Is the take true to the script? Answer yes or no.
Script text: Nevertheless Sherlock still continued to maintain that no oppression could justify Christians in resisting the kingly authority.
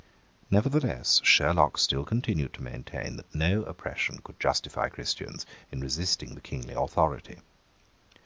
yes